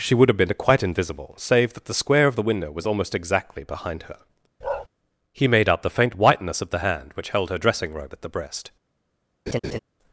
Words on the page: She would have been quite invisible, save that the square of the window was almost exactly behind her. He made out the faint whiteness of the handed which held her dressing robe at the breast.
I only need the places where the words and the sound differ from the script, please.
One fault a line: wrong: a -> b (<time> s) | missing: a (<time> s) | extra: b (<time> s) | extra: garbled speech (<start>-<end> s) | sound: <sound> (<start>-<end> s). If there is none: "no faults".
sound: bark (4.6-4.9 s)
wrong: handed -> hand (6.8 s)
sound: laugh (9.5-9.8 s)